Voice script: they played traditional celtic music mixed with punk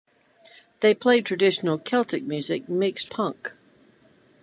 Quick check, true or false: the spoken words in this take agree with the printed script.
false